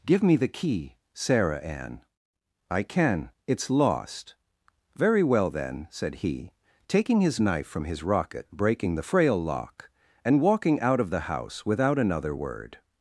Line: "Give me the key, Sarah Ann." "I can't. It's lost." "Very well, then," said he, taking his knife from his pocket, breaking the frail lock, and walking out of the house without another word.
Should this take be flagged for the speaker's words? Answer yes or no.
yes